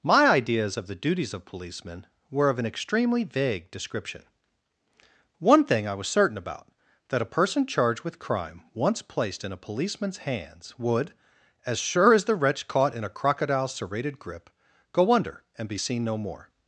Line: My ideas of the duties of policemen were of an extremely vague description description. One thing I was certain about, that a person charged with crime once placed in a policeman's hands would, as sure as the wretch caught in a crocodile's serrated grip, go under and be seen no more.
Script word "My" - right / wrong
right